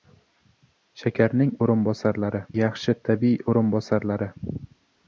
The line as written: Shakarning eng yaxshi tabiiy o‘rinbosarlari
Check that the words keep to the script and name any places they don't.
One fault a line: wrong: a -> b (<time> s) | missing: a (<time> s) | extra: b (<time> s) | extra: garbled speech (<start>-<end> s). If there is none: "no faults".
wrong: eng -> o‘rinbosarlari (1.7 s)